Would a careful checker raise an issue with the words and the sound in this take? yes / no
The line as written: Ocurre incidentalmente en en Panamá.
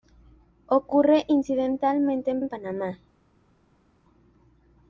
no